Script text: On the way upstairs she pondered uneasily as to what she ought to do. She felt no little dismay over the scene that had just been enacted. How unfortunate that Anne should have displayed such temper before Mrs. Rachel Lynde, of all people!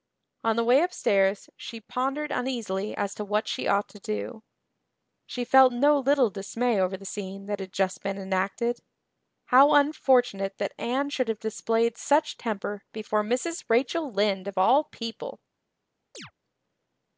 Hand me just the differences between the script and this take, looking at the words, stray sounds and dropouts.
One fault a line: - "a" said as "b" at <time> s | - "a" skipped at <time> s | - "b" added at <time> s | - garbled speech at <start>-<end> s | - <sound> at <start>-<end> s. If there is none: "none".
- chirp at 16.1-16.3 s